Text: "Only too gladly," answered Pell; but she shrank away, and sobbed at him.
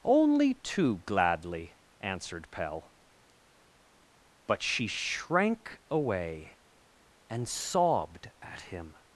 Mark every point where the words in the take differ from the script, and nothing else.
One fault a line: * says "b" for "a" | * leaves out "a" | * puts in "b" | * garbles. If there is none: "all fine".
all fine